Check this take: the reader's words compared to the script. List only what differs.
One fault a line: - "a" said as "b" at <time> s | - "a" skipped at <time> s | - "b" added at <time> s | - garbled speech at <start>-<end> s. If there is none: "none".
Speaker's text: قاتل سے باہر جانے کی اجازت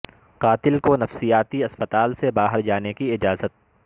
- "کو نفسیاتی اسپتال" added at 0.8 s